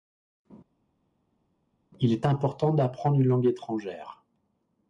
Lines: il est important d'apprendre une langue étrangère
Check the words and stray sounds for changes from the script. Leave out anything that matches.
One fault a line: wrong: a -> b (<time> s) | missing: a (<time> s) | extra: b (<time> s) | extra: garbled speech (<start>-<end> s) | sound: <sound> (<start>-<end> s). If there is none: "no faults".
no faults